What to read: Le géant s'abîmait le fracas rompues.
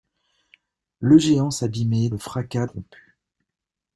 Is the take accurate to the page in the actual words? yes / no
yes